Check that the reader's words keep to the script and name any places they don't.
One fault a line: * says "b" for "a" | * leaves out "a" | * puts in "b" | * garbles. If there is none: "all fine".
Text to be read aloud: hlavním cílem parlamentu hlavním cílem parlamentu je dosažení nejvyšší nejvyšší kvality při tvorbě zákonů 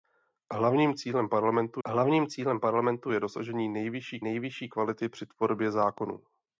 all fine